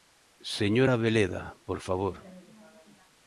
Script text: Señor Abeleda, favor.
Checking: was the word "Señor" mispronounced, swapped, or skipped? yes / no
no